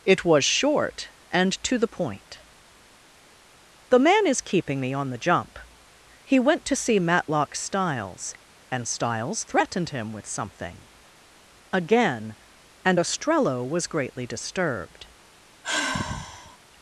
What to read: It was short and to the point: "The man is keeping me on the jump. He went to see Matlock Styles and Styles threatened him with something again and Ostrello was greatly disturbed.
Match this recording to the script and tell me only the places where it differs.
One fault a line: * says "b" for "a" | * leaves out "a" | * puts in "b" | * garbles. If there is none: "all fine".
all fine